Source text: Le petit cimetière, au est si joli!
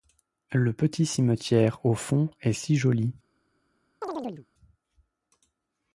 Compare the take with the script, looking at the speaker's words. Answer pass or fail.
fail